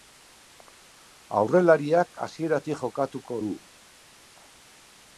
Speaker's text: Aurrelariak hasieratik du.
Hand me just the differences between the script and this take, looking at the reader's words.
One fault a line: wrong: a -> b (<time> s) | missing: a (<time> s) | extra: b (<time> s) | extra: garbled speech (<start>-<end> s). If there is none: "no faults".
extra: jokatuko (2.8 s)